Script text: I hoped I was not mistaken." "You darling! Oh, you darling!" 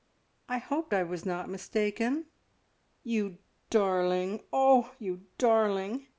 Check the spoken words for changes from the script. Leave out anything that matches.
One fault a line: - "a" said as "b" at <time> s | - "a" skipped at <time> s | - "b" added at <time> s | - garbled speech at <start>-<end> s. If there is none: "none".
none